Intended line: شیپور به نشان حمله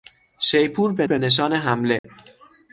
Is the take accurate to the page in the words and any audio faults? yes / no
no